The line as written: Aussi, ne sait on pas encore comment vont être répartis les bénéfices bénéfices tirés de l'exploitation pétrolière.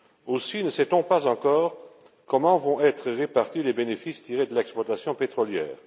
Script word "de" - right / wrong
right